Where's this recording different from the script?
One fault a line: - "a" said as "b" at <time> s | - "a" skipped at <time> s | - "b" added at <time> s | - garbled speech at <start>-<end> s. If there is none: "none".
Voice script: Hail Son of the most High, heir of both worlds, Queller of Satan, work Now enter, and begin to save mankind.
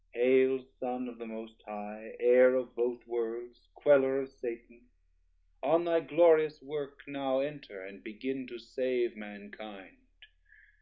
- "on thy glorious" added at 5.6 s